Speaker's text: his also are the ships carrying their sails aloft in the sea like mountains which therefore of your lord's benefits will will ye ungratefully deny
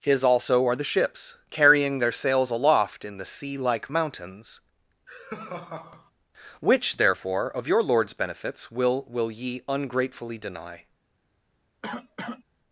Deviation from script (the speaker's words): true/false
false